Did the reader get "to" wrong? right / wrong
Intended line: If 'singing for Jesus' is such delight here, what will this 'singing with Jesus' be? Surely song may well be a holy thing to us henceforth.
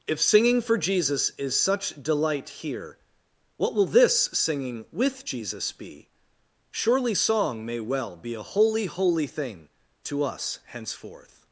right